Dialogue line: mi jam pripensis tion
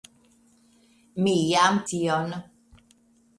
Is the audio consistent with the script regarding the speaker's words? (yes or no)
no